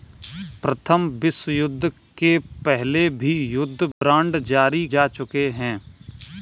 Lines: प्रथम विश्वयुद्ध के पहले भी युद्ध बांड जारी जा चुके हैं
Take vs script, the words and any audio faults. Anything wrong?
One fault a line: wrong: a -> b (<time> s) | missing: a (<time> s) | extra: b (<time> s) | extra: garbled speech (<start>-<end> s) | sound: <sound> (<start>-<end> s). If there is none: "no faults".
sound: dropout (3.9-4.0 s)